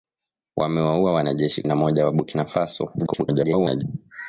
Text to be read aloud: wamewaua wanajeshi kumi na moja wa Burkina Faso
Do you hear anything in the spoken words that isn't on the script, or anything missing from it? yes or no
yes